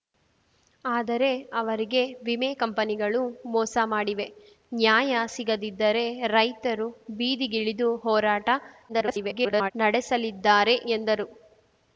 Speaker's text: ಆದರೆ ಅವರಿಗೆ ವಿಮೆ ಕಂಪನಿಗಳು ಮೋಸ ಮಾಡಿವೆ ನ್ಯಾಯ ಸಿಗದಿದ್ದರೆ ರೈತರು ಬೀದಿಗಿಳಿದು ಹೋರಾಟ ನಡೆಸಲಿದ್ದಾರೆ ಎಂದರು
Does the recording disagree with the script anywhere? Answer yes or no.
yes